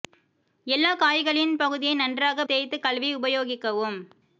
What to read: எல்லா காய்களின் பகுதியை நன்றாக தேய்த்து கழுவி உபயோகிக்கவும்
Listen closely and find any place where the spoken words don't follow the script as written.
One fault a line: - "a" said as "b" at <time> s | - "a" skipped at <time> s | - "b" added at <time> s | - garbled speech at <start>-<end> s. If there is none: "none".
none